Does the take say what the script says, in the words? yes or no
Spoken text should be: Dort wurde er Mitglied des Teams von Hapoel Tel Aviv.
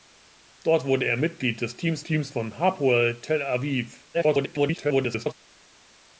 no